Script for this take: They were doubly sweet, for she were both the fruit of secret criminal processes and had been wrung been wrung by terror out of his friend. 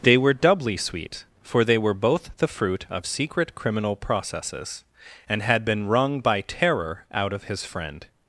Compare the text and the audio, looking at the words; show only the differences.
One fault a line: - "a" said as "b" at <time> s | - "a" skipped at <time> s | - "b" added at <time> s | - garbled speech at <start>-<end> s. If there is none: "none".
- "she" said as "they" at 1.6 s
- "been wrung" skipped at 6.2 s